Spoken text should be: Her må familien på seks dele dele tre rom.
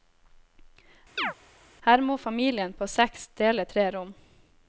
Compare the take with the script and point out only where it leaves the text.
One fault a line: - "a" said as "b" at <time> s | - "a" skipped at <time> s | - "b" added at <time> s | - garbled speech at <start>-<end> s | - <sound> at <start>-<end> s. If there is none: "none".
- chirp at 1.2-1.3 s
- "dele" skipped at 3.7 s